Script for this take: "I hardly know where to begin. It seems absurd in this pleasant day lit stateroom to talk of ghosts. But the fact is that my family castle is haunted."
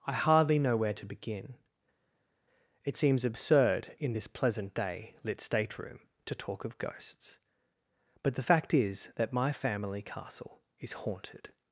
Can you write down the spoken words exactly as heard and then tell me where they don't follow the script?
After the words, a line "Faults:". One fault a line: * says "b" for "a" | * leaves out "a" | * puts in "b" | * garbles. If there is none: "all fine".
"I hardly know where to begin. It seems absurd in this pleasant day lit stateroom to talk of ghosts. But the fact is that my family castle is haunted."
Faults:
all fine